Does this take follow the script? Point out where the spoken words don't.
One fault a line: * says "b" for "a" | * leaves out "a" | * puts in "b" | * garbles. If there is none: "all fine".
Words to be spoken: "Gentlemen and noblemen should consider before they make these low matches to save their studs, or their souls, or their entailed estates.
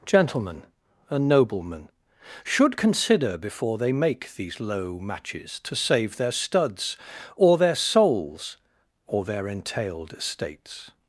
all fine